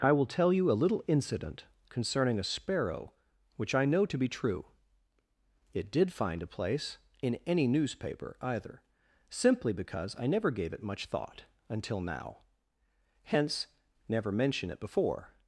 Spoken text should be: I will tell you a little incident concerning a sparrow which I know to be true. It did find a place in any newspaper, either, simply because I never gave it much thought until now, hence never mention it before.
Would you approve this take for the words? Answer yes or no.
yes